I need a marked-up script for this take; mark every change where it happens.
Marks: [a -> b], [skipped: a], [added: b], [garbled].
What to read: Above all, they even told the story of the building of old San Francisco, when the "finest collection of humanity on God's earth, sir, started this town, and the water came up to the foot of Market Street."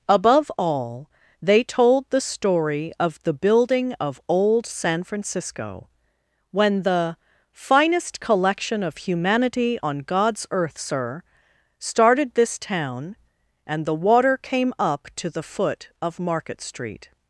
Above all, they [skipped: even] told the story of the building of old San Francisco, when the "finest collection of humanity on God's earth, sir, started this town, and the water came up to the foot of Market Street."